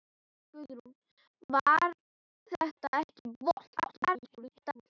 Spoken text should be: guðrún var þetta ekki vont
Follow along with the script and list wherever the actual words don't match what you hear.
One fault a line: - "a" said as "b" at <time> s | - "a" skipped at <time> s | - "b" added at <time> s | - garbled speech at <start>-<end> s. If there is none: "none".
- garbled speech at 3.8-4.9 s